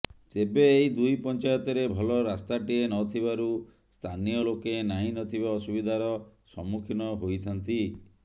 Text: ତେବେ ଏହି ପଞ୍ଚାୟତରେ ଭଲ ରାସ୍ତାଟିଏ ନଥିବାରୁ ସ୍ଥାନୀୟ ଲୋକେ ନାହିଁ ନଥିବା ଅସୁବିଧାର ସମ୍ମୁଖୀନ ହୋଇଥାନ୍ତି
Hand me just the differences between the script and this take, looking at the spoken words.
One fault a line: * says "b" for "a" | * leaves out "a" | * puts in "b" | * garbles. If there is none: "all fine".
* puts in "ଦୁଇ"